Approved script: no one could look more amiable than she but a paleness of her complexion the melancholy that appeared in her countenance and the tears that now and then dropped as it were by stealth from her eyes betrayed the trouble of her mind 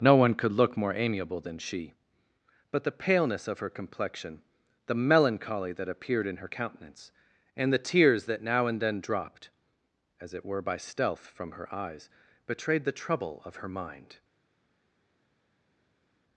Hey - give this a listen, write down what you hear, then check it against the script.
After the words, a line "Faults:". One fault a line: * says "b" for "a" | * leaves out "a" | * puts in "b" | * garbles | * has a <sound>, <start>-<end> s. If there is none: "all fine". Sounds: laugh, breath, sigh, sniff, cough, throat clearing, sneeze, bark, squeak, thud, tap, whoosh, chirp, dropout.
no one could look more amiable than she but the paleness of her complexion the melancholy that appeared in her countenance and the tears that now and then dropped as it were by stealth from her eyes betrayed the trouble of her mind
Faults:
* says "the" for "a"